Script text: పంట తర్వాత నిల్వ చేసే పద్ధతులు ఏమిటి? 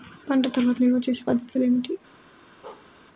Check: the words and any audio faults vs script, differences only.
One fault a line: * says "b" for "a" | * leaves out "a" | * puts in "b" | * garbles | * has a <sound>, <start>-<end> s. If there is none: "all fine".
* has a bark, 2.6-2.9 s